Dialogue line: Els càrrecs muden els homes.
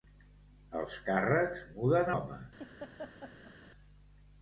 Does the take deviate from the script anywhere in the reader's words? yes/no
yes